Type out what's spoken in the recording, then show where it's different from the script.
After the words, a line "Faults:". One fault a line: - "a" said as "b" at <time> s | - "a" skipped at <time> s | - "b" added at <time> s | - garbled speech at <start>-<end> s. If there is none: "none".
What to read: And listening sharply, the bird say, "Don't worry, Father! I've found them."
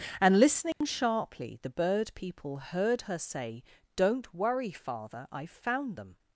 And listening sharply, the bird people heard her say, "Don't worry, Father! I've found them."
Faults:
- "people heard her" added at 2.1 s